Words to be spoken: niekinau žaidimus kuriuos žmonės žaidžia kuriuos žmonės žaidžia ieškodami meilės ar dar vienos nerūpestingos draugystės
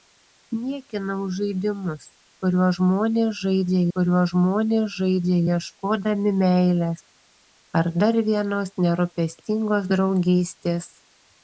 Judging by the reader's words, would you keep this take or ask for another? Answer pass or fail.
pass